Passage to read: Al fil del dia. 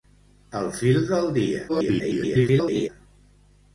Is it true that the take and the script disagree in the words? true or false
true